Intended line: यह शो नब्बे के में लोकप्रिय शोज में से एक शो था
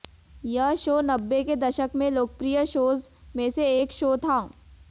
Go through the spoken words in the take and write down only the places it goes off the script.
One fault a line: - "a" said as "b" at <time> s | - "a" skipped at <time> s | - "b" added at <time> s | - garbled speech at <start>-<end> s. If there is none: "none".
- "दशक" added at 1.6 s